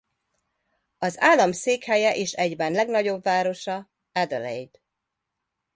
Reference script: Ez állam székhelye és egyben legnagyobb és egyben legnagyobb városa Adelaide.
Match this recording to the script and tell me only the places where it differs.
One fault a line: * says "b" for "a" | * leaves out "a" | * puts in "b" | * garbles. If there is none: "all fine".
* says "Az" for "Ez"
* leaves out "és egyben legnagyobb"